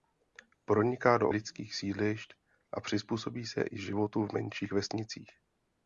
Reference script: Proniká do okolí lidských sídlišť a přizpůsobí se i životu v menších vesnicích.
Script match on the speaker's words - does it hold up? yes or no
no